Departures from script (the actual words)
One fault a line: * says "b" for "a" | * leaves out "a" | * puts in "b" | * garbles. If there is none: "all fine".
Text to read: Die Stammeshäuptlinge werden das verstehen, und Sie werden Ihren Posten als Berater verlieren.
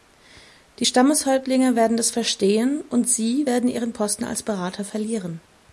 all fine